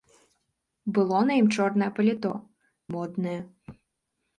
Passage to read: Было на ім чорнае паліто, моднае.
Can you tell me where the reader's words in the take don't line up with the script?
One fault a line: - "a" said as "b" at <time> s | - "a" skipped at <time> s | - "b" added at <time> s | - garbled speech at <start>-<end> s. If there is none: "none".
none